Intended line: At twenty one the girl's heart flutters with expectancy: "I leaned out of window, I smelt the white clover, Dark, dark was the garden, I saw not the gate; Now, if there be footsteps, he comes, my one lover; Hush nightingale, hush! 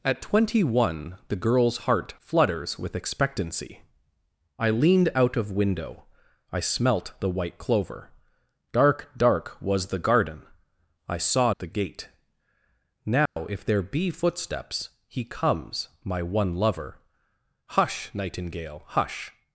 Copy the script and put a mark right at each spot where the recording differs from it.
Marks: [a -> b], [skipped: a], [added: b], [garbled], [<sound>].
At twenty one the girl's heart flutters with expectancy: "I leaned out of window, I smelt the white clover, Dark, dark was the garden, I saw [skipped: not] the gate; Now, [dropout] if there be footsteps, he comes, my one lover; Hush nightingale, hush!